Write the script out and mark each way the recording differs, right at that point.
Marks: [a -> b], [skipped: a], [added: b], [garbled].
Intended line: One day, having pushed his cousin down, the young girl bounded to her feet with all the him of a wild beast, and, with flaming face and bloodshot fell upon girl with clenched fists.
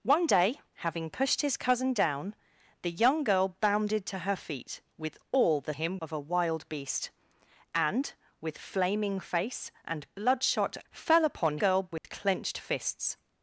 One day, having pushed his cousin down, the young girl bounded to her feet with all the him of a wild beast, and, with flaming face and bloodshot fell upon girl with clenched fists.